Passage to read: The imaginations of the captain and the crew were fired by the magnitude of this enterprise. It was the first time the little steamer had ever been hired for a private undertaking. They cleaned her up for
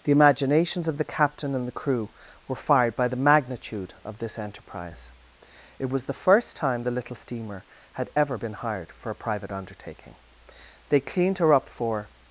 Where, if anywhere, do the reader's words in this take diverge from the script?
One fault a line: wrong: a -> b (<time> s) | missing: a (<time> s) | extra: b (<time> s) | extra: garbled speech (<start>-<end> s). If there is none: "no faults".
no faults